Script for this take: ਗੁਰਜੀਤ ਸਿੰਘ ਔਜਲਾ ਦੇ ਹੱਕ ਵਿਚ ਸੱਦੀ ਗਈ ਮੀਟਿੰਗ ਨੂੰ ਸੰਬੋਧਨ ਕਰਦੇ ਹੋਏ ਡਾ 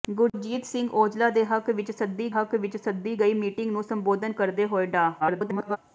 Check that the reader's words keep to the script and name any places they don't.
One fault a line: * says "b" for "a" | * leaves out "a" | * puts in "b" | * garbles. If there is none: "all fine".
* puts in "ਹੱਕ ਵਿਚ ਸੱਦੀ"
* garbles